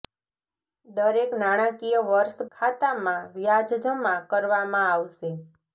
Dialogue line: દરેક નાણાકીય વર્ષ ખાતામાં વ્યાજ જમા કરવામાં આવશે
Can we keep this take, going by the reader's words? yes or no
yes